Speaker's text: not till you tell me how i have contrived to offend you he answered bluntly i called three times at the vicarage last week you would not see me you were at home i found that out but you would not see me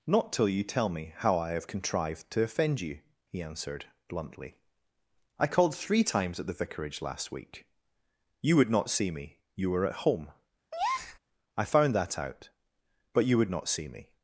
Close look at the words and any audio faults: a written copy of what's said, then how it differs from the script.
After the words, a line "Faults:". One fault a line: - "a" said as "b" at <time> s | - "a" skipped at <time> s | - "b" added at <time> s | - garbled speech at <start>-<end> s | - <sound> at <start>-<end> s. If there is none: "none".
not till you tell me how i have contrived to offend you he answered bluntly i called three times at the vicarage last week you would not see me you were at home i found that out but you would not see me
Faults:
- breath at 10.7-11.2 s